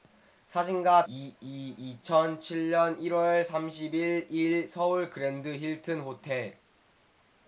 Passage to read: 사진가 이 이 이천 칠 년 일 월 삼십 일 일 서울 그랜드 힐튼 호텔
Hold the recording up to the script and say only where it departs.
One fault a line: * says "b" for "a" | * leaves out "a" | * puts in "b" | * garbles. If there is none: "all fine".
all fine